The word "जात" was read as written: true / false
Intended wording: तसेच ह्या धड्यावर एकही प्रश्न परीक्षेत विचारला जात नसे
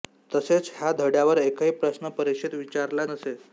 false